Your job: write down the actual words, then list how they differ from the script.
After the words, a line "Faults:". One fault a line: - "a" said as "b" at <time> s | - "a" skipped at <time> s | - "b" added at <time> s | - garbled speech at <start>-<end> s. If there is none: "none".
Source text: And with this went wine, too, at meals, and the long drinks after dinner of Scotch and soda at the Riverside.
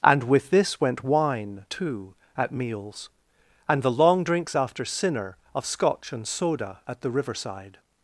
And with this went wine, too, at meals, and the long drinks after sinner of Scotch and soda at the Riverside.
Faults:
- "dinner" said as "sinner" at 4.9 s